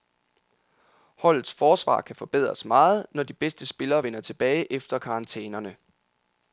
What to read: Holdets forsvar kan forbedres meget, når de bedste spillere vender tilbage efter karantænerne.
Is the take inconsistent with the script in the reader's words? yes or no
no